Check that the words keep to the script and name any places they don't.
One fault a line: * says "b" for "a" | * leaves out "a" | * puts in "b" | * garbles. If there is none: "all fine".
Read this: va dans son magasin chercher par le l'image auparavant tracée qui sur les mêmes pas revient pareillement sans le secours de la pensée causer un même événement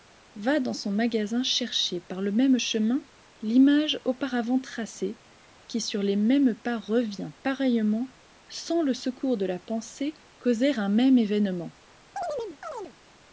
* puts in "même chemin"